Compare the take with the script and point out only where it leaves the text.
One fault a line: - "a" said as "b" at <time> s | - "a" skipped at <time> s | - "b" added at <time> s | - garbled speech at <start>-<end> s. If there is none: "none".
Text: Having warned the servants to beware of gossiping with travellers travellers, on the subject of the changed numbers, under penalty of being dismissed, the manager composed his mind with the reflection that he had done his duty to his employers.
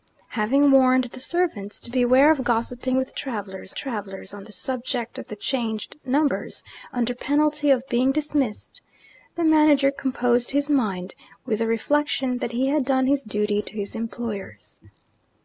none